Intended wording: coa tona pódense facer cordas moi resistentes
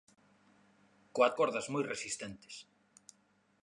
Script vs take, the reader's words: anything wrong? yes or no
yes